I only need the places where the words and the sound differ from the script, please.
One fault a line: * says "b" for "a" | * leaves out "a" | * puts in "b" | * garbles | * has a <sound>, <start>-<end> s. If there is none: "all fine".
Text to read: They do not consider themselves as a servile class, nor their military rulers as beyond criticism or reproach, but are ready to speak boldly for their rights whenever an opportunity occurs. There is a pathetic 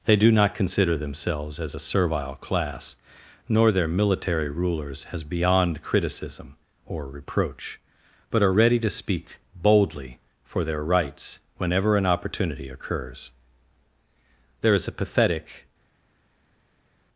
all fine